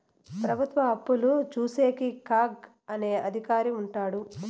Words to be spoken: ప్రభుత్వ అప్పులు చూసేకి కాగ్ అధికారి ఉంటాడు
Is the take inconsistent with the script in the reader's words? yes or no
yes